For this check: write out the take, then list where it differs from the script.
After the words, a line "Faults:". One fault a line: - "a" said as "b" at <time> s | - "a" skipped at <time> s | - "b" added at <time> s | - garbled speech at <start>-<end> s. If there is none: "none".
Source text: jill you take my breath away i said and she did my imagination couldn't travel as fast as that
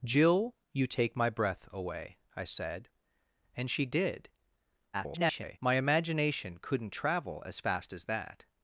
jill you take my breath away i said and she did [garbled] my imagination couldn't travel as fast as that
Faults:
- garbled speech at 4.9-5.6 s